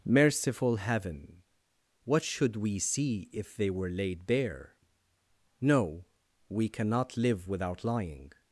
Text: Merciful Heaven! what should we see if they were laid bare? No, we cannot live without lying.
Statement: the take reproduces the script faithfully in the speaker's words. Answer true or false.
true